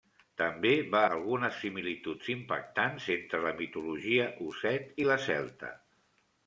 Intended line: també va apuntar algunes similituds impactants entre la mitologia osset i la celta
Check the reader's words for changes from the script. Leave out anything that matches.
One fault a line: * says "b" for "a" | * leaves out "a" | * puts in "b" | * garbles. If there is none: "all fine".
* leaves out "apuntar"